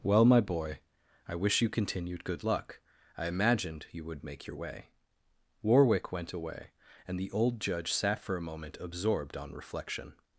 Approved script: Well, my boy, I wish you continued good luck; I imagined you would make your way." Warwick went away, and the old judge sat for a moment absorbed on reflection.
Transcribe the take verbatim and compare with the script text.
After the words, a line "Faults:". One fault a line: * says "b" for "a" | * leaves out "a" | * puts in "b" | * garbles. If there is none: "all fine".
Well, my boy, I wish you continued good luck; I imagined you would make your way." Warwick went away, and the old judge sat for a moment absorbed on reflection.
Faults:
all fine